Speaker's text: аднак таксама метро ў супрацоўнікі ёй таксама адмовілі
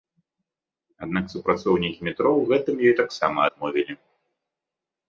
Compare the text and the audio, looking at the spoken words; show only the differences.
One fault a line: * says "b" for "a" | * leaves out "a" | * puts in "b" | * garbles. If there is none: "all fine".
* says "супрацоўнікі" for "таксама"
* says "гэтым" for "супрацоўнікі"